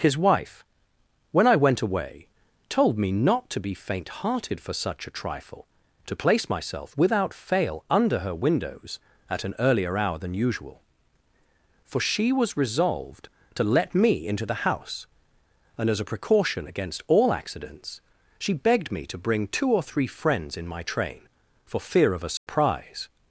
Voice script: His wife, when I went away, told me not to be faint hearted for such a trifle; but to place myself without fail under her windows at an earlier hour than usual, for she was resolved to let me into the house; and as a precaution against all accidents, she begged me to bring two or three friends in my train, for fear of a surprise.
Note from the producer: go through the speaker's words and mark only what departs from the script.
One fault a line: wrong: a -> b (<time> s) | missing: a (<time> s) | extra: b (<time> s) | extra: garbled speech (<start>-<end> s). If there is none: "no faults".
missing: but (5.7 s)